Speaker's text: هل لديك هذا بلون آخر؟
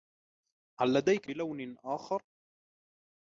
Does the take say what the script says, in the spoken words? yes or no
no